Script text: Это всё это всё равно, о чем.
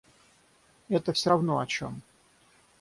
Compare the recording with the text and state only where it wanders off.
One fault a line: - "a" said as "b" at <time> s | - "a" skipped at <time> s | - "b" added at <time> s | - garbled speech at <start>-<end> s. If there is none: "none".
- "это всё" skipped at 1.3 s